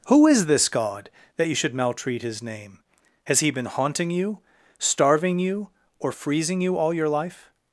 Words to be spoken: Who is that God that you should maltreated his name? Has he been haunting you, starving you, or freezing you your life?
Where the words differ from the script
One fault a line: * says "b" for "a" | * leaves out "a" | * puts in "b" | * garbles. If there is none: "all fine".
* says "this" for "that"
* says "maltreat" for "maltreated"
* puts in "all"